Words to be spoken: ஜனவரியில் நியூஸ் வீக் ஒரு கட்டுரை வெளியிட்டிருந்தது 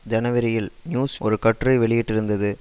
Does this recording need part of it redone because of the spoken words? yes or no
yes